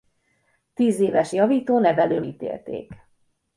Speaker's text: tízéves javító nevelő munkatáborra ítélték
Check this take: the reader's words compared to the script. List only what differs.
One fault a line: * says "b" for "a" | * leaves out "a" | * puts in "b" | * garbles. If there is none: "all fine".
* leaves out "munkatáborra"